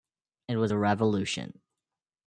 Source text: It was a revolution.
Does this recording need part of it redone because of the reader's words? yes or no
no